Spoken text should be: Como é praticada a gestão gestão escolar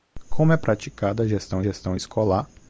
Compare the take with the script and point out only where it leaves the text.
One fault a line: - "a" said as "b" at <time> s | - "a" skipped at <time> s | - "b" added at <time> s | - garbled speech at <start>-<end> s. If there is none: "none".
none